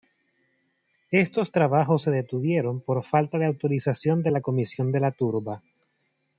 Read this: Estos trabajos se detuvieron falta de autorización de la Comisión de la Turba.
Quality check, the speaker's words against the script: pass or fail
fail